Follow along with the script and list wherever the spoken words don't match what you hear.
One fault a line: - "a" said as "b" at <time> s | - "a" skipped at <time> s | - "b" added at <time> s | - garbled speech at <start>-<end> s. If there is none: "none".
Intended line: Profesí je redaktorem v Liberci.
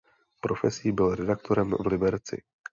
- "je" said as "byl" at 0.9 s